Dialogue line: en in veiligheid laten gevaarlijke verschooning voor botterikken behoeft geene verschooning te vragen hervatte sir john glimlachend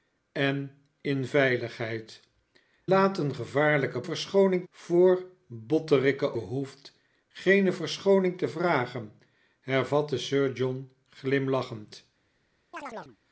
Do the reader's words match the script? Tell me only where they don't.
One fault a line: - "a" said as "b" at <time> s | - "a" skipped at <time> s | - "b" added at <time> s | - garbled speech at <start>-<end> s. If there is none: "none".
none